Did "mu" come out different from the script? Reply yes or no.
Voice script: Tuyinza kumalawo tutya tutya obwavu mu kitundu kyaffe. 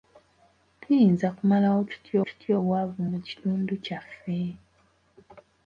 no